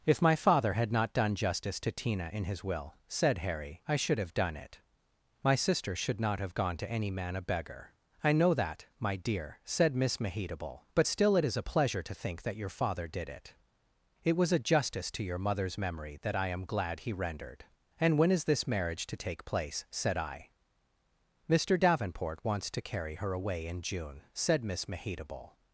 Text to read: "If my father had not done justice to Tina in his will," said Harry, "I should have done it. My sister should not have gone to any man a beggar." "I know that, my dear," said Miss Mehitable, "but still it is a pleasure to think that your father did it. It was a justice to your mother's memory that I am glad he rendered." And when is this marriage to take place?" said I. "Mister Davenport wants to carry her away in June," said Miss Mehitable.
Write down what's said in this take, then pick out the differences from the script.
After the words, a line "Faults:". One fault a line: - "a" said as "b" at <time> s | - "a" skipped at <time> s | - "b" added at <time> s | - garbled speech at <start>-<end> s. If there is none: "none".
"If my father had not done justice to Tina in his will," said Harry, "I should have done it. My sister should not have gone to any man a beggar." "I know that, my dear," said Miss Mehitable, "but still it is a pleasure to think that your father did it. It was a justice to your mother's memory that I am glad he rendered." And when is this marriage to take place?" said I. "Mister Davenport wants to carry her away in June," said Miss Mehitable.
Faults:
none